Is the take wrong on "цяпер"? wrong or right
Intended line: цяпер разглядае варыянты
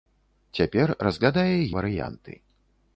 right